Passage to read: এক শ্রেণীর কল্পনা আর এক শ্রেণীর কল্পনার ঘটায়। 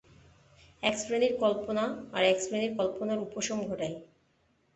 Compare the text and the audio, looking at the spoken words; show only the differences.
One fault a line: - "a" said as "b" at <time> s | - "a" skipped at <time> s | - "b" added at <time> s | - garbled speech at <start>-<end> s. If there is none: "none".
- "উপশম" added at 3.2 s